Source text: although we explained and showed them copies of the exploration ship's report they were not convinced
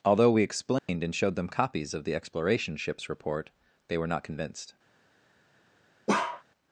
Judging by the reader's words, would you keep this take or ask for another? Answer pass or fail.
pass